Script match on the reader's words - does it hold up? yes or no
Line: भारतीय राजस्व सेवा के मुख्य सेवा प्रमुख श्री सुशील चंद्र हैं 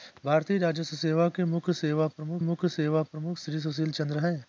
no